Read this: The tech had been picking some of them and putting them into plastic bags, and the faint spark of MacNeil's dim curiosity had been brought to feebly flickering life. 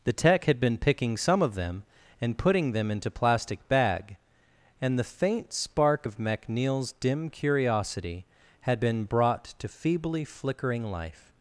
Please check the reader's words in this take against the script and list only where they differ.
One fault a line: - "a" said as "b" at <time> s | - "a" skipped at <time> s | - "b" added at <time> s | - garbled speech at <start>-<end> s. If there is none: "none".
- "bags" said as "bag" at 3.7 s